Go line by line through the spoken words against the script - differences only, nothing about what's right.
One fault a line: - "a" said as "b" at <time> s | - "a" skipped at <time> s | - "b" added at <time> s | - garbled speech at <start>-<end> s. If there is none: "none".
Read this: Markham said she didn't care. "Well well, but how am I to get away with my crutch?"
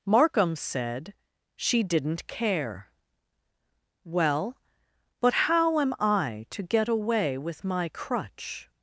- "well" skipped at 4.6 s